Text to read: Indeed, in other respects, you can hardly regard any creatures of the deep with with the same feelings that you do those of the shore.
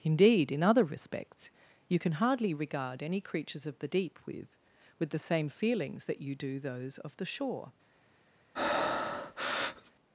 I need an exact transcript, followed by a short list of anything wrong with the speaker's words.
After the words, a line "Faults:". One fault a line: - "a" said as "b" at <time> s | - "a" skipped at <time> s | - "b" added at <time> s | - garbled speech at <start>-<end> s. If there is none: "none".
Indeed, in other respects, you can hardly regard any creatures of the deep with with the same feelings that you do those of the shore.
Faults:
none